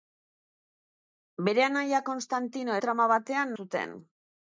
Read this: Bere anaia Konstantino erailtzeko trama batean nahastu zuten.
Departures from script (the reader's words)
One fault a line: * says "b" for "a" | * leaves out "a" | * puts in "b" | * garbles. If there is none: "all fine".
* leaves out "erailtzeko"
* leaves out "nahastu"